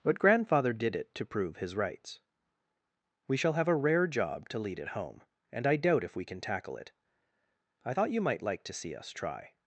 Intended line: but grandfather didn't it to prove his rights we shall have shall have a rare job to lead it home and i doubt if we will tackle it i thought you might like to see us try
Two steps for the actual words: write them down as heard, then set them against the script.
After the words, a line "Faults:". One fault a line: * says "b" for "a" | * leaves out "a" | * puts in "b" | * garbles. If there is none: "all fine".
but grandfather did it to prove his rights we shall have a rare job to lead it home and i doubt if we can tackle it i thought you might like to see us try
Faults:
* says "did" for "didn't"
* leaves out "shall have"
* says "can" for "will"